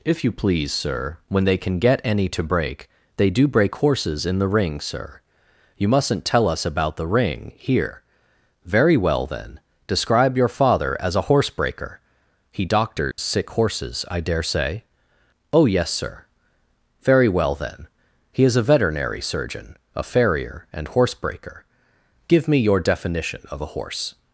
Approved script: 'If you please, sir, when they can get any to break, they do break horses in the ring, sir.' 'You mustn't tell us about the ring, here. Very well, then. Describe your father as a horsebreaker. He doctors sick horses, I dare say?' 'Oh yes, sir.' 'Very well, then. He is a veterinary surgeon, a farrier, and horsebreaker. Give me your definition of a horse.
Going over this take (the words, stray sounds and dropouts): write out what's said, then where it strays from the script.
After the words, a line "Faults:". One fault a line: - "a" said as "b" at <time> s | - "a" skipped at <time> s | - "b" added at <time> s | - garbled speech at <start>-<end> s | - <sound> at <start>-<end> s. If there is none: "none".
'If you please, sir, when they can get any to break, they do break horses in the ring, sir.' 'You mustn't tell us about the ring, here. Very well, then. Describe your father as a horsebreaker. He doctors sick horses, I dare say?' 'Oh yes, sir.' 'Very well, then. He is a veterinary surgeon, a farrier, and horsebreaker. Give me your definition of a horse.
Faults:
- dropout at 13.1-13.2 s